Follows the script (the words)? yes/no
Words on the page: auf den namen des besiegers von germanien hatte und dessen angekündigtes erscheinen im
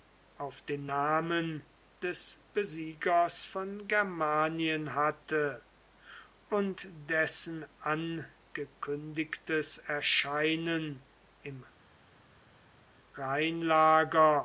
yes